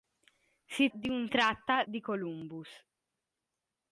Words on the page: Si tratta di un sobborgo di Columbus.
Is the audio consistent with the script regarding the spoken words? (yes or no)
no